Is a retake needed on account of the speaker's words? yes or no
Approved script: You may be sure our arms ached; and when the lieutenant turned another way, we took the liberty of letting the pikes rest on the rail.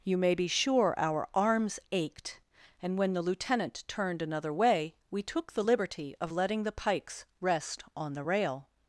no